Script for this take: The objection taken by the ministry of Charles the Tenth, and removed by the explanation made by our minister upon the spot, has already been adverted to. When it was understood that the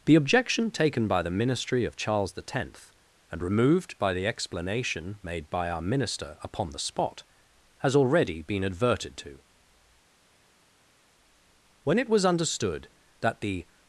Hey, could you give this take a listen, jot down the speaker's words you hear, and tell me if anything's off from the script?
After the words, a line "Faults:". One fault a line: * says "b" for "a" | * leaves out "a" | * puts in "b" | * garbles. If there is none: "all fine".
The objection taken by the ministry of Charles the Tenth, and removed by the explanation made by our minister upon the spot, has already been adverted to. When it was understood that the
Faults:
all fine